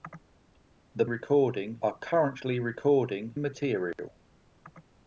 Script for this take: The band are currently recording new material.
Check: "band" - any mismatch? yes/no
yes